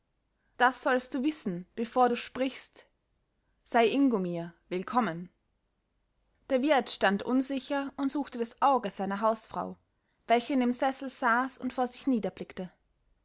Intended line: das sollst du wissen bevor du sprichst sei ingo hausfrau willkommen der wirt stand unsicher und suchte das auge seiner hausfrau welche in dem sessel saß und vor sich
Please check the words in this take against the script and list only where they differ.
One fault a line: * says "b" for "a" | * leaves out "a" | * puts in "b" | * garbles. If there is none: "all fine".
* says "mir" for "hausfrau"